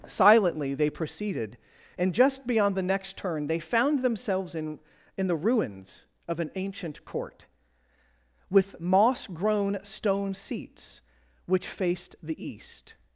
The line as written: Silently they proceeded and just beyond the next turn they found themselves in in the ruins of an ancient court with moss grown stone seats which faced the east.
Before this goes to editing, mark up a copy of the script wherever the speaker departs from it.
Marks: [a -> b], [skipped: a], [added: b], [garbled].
Silently they proceeded and just beyond the next turn they found themselves in in the ruins of an ancient court with moss grown stone seats which faced the east.